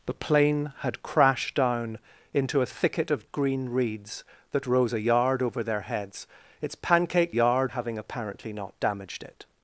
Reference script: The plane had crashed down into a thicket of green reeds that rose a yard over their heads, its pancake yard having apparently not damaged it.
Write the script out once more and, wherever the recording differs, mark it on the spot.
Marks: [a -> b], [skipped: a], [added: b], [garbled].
The plane had crashed down into a thicket of green reeds that rose a yard over their heads, its pancake yard having apparently not damaged it.